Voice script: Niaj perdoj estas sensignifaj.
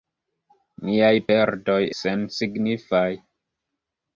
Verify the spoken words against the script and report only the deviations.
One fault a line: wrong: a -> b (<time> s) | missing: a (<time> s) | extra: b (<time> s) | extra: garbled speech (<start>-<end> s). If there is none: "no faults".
missing: estas (1.8 s)